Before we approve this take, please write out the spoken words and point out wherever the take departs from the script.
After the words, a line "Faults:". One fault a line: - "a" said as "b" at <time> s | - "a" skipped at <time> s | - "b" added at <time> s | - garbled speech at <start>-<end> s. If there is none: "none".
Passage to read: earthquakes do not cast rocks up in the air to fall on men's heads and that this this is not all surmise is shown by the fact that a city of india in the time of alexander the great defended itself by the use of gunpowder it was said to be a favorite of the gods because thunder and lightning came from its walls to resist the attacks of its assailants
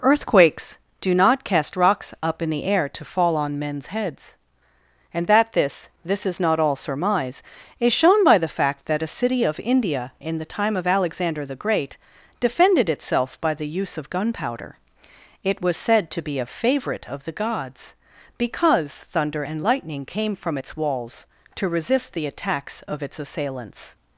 earthquakes do not cast rocks up in the air to fall on men's heads and that this this is not all surmise is shown by the fact that a city of india in the time of alexander the great defended itself by the use of gunpowder it was said to be a favorite of the gods because thunder and lightning came from its walls to resist the attacks of its assailants
Faults:
none